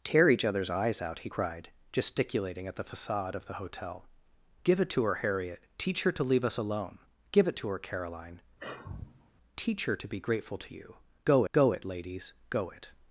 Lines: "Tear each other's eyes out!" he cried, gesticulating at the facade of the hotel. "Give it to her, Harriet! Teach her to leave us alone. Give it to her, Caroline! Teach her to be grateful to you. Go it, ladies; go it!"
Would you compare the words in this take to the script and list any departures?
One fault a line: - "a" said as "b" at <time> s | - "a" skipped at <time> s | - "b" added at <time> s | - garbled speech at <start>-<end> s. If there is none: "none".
- "go" added at 11.5 s